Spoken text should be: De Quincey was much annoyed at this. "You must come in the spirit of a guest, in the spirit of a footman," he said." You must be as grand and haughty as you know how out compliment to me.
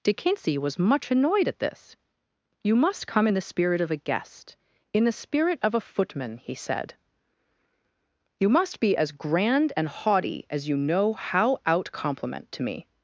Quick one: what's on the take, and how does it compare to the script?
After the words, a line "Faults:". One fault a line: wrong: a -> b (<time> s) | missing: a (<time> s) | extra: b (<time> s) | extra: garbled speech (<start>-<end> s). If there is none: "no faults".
De Quincey was much annoyed at this. "You must come in the spirit of a guest, in the spirit of a footman," he said." You must be as grand and haughty as you know how out compliment to me.
Faults:
no faults